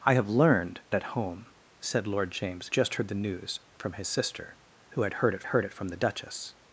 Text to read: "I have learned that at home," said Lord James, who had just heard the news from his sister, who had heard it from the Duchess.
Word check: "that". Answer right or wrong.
wrong